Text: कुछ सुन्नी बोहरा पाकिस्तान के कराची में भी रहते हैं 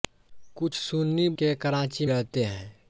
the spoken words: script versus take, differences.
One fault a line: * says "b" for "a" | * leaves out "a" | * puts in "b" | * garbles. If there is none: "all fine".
* leaves out "बोहरा पाकिस्तान"
* leaves out "में भी"